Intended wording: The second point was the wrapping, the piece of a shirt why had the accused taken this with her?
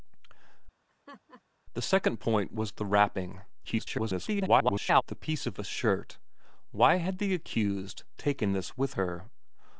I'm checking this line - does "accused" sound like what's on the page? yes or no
yes